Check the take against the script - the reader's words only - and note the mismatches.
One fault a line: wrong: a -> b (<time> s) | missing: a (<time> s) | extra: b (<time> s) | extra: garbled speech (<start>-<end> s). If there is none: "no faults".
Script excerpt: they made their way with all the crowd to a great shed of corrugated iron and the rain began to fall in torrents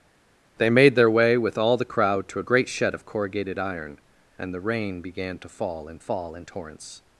extra: fall in (6.0 s)